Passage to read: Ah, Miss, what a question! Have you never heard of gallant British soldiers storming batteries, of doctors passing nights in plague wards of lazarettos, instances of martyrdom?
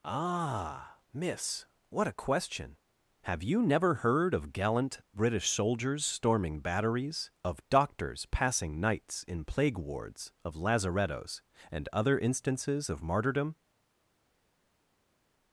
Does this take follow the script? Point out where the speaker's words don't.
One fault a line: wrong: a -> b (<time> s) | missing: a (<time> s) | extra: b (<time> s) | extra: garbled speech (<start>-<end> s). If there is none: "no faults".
extra: and other (11.7 s)